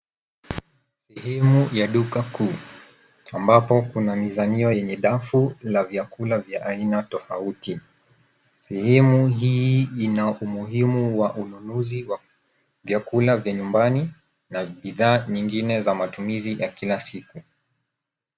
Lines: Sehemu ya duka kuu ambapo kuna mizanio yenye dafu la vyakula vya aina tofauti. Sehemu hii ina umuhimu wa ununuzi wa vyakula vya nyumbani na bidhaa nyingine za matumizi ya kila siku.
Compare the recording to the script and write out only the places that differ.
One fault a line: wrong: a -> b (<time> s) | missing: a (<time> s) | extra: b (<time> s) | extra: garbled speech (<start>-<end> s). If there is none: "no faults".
no faults